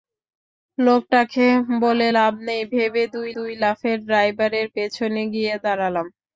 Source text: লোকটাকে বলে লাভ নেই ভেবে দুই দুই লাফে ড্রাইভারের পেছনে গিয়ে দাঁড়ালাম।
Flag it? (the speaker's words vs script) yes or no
no